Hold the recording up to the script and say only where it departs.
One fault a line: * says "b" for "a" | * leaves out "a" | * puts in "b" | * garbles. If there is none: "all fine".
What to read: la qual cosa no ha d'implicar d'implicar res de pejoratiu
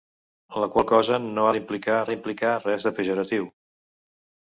all fine